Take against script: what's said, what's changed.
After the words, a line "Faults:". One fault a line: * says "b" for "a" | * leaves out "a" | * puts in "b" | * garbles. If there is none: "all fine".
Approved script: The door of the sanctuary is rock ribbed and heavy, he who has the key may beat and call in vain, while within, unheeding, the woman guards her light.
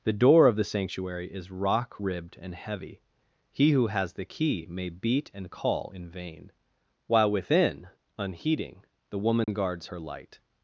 The door of the sanctuary is rock ribbed and heavy, he who has the key may beat and call in vain, while within, unheeding, the woman guards her light.
Faults:
all fine